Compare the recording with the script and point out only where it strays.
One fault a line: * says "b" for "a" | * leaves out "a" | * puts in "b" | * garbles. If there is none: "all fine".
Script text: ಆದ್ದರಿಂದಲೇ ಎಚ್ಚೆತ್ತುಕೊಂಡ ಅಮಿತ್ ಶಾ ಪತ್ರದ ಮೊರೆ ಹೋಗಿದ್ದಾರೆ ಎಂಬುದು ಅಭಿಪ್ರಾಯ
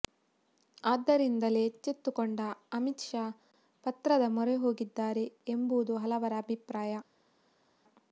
* puts in "ಹಲವರ"